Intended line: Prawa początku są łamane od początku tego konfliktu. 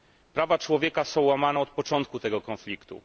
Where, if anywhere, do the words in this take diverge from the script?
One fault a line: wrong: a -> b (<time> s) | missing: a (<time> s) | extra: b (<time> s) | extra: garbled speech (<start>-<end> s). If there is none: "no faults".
wrong: początku -> człowieka (0.6 s)